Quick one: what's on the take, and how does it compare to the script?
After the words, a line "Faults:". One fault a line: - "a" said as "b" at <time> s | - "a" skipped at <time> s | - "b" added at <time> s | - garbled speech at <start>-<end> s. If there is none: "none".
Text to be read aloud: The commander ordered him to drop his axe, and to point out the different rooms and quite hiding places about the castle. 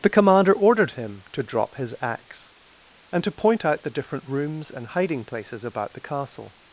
The commander ordered him to drop his axe, and to point out the different rooms and hiding places about the castle.
Faults:
- "quite" skipped at 4.9 s